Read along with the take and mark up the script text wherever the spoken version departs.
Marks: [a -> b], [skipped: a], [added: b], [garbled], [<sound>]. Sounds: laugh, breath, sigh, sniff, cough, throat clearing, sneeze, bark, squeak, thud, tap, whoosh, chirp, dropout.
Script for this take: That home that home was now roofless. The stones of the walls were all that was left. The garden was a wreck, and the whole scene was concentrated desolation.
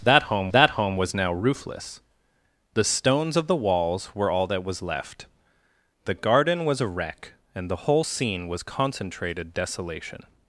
That home that home was now roofless. The stones of the walls were all that was left. The garden was a wreck, and the whole scene was concentrated desolation.